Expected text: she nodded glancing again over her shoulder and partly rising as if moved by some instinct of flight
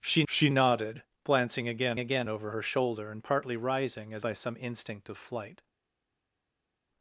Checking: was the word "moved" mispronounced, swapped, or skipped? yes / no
yes